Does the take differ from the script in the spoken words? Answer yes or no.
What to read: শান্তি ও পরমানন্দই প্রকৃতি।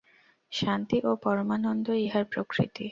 yes